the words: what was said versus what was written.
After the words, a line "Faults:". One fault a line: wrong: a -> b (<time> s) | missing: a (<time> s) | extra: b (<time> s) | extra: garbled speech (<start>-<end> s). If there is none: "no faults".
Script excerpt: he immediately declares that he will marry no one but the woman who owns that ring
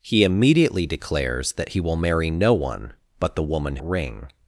he immediately declares that he will marry no one but the woman ring
Faults:
missing: who owns that (3.8 s)